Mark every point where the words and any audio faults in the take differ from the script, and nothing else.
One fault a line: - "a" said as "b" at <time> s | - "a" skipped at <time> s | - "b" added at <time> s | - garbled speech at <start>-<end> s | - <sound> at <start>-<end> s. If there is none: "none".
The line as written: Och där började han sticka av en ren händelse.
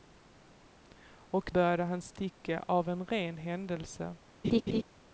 - "där" skipped at 1.5 s
- laugh at 4.4-4.8 s